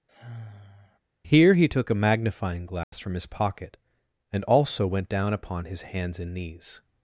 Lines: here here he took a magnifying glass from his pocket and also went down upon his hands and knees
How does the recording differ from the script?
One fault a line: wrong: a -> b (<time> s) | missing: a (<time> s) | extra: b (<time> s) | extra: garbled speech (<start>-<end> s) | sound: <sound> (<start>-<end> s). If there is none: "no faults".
sound: sigh (0.1-1.0 s)
missing: here (1.6 s)
sound: dropout (2.8-2.9 s)